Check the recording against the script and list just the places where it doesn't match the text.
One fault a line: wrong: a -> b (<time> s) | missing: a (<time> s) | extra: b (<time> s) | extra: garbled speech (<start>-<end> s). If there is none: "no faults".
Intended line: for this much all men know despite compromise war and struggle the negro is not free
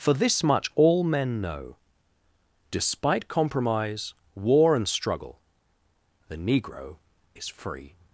missing: not (7.5 s)